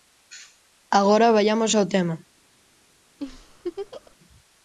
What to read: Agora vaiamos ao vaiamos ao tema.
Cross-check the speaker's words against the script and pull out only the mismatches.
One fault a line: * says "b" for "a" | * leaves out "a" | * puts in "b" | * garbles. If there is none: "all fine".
* leaves out "vaiamos ao"